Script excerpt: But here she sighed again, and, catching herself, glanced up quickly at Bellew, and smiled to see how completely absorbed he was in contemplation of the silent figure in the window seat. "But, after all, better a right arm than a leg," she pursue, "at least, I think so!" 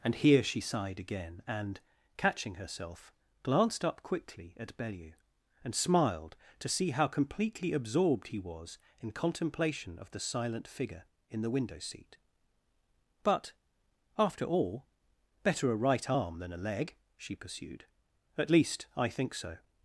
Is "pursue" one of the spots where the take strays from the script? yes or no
yes